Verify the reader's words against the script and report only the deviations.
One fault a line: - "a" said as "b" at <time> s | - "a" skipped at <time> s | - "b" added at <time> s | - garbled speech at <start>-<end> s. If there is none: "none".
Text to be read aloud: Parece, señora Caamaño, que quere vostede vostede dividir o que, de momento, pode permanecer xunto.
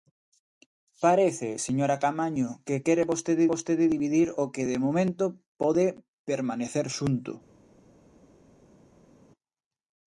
none